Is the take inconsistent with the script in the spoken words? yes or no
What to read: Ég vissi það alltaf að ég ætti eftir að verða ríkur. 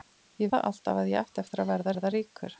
yes